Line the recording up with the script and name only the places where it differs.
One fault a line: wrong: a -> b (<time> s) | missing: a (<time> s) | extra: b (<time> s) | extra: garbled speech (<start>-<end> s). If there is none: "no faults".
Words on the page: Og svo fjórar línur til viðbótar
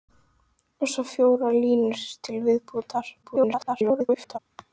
extra: garbled speech (3.2-4.4 s)